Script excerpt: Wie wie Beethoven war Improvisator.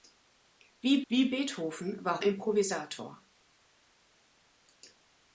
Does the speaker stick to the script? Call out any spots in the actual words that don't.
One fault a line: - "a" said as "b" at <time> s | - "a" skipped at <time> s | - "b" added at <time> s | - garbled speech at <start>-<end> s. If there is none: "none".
none